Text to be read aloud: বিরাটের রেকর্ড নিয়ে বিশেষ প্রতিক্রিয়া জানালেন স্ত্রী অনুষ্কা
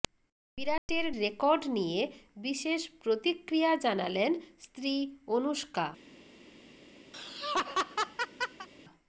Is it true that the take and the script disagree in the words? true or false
false